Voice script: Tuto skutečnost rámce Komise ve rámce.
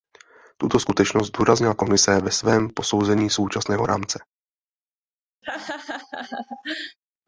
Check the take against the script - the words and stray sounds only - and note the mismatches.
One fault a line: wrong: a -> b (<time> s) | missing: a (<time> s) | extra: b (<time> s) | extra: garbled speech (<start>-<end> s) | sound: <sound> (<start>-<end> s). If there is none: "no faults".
wrong: rámce -> zdůraznila (1.3 s)
extra: svém posouzení současného (2.3 s)
sound: laugh (5.4-7.0 s)